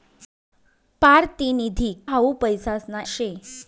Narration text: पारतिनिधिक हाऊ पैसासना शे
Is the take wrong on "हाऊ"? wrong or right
right